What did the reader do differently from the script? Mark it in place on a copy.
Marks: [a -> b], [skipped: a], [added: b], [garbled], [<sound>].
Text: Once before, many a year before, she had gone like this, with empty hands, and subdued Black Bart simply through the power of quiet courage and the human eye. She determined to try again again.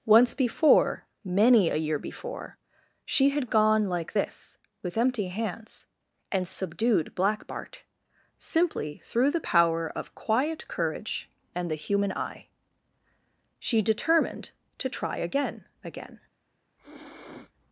Once before, many a year before, she had gone like this, with empty hands, and subdued Black Bart simply through the power of quiet courage and the human eye. She determined to try again again. [sniff]